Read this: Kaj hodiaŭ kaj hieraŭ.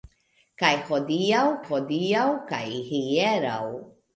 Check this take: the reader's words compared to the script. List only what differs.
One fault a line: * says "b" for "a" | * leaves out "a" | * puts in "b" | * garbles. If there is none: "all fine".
* puts in "hodiaŭ"